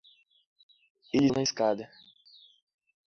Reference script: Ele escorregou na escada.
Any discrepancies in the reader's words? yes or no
yes